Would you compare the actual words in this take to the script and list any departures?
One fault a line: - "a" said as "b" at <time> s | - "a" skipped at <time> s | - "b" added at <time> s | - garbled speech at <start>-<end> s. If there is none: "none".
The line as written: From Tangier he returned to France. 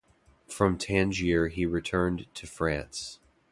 none